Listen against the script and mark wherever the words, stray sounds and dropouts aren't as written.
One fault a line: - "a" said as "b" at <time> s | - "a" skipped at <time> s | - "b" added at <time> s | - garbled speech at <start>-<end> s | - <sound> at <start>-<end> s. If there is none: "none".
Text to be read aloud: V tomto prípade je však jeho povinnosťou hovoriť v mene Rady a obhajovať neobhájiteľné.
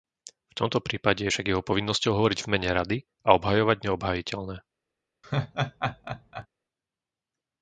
- laugh at 5.2-6.5 s